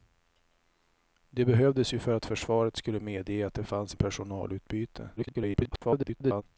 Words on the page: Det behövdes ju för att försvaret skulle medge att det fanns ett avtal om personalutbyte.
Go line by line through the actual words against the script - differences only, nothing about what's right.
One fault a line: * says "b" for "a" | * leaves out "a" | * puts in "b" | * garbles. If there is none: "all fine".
* leaves out "ett avtal"
* garbles